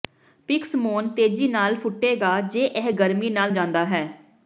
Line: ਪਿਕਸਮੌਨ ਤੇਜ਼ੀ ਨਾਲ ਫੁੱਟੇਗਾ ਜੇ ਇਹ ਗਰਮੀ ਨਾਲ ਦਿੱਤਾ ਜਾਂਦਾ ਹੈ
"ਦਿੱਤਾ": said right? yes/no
no